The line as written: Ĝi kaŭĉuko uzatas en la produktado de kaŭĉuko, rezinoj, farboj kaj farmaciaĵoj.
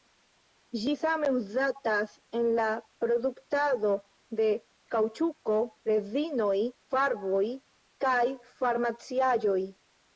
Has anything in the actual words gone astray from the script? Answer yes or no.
yes